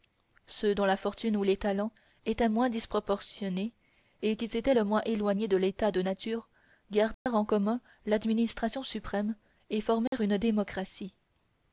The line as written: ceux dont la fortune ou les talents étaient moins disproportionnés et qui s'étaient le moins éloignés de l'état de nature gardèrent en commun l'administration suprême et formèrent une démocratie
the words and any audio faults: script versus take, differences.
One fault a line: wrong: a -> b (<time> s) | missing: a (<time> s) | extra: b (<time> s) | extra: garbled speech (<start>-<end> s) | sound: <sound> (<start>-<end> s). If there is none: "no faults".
sound: dropout (7.1-7.3 s)
sound: dropout (10.1-10.1 s)